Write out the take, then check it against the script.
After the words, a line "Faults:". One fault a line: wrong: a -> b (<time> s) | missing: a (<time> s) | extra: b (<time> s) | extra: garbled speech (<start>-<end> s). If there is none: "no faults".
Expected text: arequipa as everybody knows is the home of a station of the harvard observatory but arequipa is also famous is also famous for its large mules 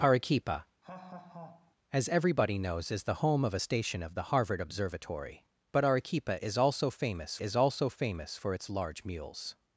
arequipa as everybody knows is the home of a station of the harvard observatory but arequipa is also famous is also famous for its large mules
Faults:
no faults